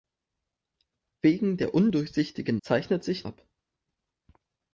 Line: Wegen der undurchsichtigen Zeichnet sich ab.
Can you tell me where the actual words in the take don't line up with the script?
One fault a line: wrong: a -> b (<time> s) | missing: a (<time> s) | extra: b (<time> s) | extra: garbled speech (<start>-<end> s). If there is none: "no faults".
no faults